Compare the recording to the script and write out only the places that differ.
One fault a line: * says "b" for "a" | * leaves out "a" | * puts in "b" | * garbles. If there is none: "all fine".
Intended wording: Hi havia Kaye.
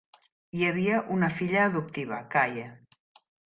* puts in "una filla adoptiva"